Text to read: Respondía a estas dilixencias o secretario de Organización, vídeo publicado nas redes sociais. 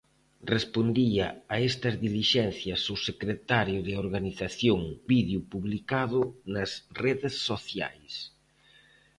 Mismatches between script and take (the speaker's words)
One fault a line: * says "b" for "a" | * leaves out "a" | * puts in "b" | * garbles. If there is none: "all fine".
all fine